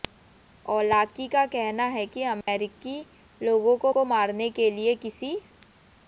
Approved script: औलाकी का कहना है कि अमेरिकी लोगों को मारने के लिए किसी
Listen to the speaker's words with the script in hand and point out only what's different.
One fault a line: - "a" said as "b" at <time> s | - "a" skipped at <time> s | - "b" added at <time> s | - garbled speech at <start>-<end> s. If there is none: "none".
- "को" added at 3.9 s